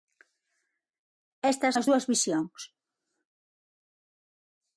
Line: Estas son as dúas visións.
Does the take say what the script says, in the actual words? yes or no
no